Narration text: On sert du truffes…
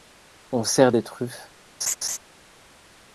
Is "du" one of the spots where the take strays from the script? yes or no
yes